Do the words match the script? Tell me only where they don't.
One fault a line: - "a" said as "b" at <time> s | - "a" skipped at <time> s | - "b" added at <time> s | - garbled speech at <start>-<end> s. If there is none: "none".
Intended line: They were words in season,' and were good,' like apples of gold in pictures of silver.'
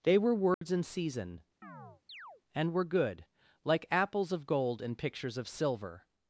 none